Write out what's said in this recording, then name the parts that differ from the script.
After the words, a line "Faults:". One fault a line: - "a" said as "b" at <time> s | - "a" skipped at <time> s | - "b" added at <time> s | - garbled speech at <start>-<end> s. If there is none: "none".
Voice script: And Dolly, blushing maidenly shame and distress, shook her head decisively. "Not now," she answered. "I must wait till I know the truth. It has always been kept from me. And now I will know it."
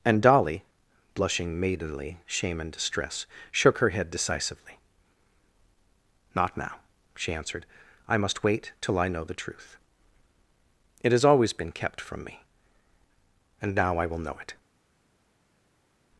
And Dolly, blushing maidenly shame and distress, shook her head decisively. "Not now," she answered. "I must wait till I know the truth. It has always been kept from me. And now I will know it."
Faults:
none